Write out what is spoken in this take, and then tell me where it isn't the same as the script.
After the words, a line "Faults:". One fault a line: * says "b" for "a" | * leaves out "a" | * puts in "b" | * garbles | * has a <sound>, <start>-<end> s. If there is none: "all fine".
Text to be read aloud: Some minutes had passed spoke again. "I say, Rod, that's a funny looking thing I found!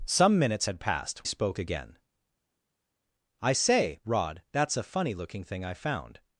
Some minutes had passed spoke again. "I say, Rod, that's a funny looking thing I found!
Faults:
all fine